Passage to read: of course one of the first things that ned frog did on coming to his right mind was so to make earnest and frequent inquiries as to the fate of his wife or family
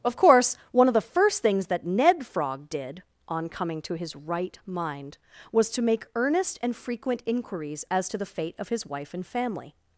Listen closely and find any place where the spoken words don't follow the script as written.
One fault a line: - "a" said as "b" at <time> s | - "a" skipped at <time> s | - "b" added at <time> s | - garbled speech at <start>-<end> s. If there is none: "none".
- "so" skipped at 5.7 s
- "or" said as "and" at 9.1 s